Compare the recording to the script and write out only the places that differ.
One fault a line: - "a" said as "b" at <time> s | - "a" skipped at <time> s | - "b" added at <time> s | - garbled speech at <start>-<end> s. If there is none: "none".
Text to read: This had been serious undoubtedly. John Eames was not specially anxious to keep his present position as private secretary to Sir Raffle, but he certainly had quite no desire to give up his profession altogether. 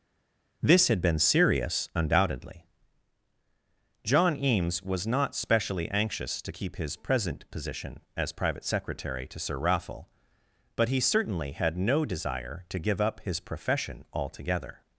- "quite" skipped at 11.8 s